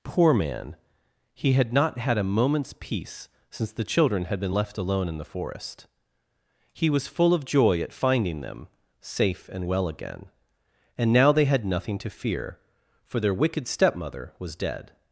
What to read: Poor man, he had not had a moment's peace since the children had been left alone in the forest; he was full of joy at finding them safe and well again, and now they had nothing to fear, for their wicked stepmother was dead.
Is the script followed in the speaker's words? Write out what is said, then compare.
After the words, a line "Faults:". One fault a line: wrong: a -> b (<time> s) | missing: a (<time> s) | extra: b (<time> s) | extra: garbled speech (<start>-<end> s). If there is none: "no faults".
Poor man, he had not had a moment's peace since the children had been left alone in the forest; he was full of joy at finding them safe and well again, and now they had nothing to fear, for their wicked stepmother was dead.
Faults:
no faults